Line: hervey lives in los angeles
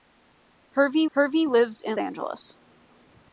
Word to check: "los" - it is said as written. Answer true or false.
false